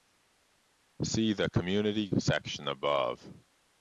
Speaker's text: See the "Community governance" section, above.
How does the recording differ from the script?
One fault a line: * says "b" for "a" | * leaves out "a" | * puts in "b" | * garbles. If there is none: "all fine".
* leaves out "governance"